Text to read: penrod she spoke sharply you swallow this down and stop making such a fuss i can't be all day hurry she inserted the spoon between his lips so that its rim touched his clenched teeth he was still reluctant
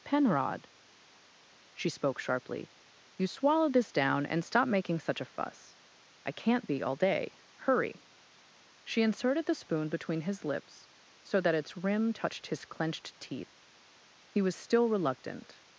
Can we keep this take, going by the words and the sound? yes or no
yes